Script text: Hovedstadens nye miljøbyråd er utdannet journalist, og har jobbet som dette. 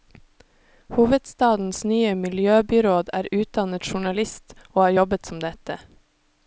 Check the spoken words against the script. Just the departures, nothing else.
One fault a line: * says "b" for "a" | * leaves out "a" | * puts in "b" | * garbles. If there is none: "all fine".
all fine